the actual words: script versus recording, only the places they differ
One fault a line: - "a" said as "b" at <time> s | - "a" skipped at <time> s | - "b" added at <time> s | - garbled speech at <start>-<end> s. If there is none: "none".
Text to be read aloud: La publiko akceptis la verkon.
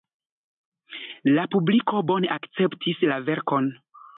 - "bone" added at 2.1 s